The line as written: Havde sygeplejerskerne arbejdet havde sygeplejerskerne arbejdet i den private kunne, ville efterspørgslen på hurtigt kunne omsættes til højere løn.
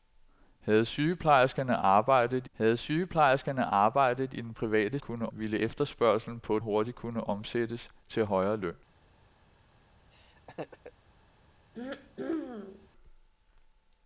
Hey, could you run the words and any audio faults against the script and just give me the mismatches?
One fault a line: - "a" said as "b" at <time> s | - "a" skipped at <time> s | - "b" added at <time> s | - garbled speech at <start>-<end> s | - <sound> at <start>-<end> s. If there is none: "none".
- laugh at 10.1-10.9 s
- throat clearing at 11.7-12.9 s